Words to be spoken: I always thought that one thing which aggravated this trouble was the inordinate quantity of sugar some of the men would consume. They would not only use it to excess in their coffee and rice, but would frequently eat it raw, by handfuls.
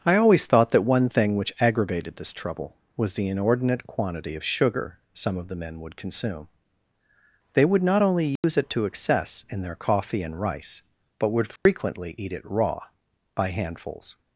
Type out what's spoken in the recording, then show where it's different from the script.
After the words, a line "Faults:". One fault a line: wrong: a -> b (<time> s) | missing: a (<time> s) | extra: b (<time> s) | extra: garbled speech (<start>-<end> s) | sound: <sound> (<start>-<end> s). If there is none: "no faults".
I always thought that one thing which aggravated this trouble was the inordinate quantity of sugar some of the men would consume. They would not only use it to excess in their coffee and rice, but would frequently eat it raw, by handfuls.
Faults:
sound: dropout (8.4-8.4 s)
sound: dropout (11.6-11.7 s)